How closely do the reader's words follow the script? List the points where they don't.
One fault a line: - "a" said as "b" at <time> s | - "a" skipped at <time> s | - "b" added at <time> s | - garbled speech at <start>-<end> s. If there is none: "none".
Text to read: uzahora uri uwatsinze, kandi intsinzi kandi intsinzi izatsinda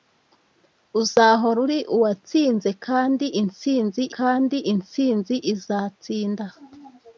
none